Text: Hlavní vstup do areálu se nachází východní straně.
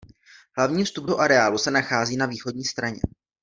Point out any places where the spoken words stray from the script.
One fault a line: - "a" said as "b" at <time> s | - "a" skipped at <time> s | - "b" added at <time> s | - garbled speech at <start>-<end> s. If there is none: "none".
- "na" added at 2.2 s